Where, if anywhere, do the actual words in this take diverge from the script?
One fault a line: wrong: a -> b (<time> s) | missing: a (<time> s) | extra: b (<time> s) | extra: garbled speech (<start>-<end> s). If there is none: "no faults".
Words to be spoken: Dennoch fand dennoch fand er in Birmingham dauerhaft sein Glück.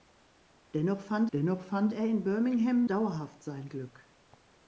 no faults